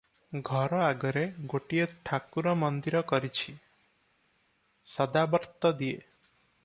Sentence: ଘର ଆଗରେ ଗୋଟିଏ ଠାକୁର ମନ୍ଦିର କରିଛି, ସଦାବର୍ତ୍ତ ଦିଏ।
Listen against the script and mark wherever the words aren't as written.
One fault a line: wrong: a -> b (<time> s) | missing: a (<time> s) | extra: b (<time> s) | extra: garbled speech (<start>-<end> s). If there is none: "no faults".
no faults